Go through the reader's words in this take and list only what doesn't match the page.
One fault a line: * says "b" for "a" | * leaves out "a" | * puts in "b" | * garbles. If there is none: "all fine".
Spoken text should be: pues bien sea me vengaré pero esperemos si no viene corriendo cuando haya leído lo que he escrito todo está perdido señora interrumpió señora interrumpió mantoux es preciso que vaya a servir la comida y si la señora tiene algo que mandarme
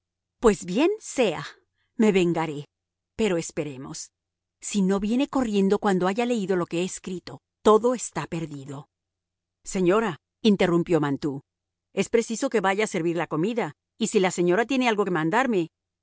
* leaves out "señora interrumpió"